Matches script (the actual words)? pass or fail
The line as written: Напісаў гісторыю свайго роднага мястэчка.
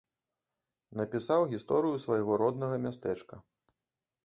pass